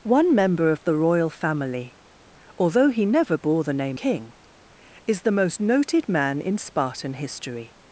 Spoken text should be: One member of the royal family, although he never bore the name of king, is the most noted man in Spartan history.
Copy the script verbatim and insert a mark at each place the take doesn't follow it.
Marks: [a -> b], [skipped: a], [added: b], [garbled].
One member of the royal family, although he never bore the name [skipped: of] king, is the most noted man in Spartan history.